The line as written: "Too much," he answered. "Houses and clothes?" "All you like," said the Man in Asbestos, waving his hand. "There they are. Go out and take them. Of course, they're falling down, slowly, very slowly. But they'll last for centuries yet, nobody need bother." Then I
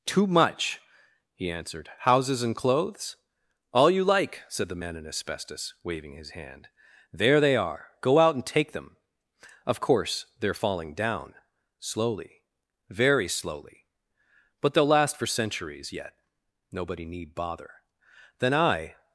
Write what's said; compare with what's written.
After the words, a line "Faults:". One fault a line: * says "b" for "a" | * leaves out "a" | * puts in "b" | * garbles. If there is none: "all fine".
"Too much," he answered. "Houses and clothes?" "All you like," said the Man in Asbestos, waving his hand. "There they are. Go out and take them. Of course, they're falling down, slowly, very slowly. But they'll last for centuries yet, nobody need bother." Then I
Faults:
all fine